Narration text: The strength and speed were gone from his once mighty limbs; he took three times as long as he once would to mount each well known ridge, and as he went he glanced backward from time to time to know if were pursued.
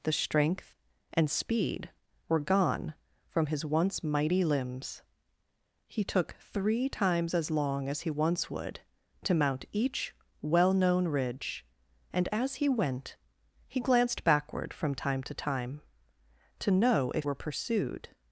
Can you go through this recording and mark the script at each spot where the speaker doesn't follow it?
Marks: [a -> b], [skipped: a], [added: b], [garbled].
The strength and speed were gone from his once mighty limbs; he took three times as long as he once would to mount each well known ridge, and as he went he glanced backward from time to time to know if were pursued.